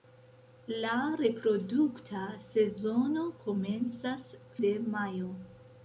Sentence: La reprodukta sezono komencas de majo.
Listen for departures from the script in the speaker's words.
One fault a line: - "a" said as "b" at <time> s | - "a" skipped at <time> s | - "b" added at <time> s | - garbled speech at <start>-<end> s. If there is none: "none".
none